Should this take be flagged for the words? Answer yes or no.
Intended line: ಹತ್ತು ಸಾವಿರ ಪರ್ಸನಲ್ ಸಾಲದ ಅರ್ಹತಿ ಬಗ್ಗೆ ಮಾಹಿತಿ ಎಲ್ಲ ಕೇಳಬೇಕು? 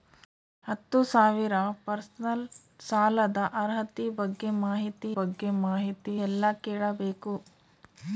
yes